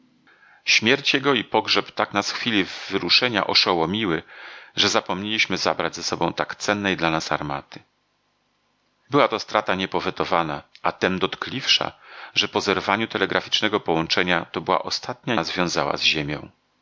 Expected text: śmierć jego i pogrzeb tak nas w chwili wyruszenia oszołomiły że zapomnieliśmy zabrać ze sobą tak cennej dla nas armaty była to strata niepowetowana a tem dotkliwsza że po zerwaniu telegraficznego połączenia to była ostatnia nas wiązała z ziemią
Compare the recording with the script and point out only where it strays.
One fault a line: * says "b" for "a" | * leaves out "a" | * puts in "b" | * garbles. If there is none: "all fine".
all fine